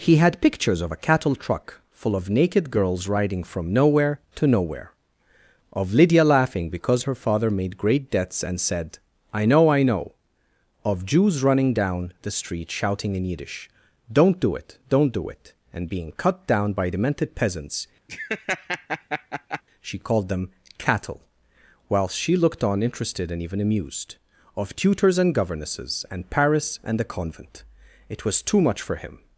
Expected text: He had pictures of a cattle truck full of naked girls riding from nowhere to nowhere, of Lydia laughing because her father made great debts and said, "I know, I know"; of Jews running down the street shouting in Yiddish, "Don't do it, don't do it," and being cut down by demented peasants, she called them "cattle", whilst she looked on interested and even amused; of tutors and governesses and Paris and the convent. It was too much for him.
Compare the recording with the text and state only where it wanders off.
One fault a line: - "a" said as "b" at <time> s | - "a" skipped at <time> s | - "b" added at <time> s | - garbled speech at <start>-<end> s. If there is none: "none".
none